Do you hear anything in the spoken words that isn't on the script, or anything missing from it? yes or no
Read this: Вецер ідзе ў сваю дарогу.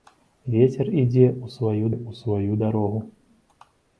yes